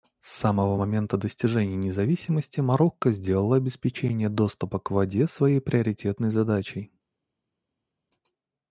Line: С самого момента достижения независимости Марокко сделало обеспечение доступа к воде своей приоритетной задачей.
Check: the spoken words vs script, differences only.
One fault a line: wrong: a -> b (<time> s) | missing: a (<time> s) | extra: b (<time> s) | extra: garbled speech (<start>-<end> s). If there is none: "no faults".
no faults